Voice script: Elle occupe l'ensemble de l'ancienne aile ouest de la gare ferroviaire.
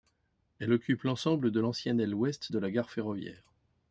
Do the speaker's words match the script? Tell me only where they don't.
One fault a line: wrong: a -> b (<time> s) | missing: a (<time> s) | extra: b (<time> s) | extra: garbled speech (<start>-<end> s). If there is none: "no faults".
no faults